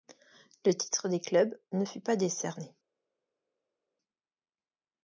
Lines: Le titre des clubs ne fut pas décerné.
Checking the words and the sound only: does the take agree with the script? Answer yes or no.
yes